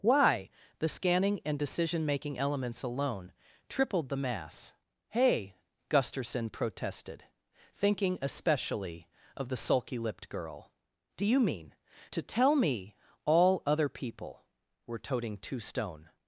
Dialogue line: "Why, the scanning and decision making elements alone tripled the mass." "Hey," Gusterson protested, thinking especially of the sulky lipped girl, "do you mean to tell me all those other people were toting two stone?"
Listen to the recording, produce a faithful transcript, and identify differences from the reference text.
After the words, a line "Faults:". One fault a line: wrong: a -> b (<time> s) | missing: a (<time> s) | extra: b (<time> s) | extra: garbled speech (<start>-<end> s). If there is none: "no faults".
"Why, the scanning and decision making elements alone tripled the mass." "Hey," Gusterson protested, thinking especially of the sulky lipped girl, "do you mean to tell me all other people were toting two stone?"
Faults:
missing: those (13.6 s)